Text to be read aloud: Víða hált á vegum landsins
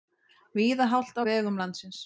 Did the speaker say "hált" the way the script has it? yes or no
yes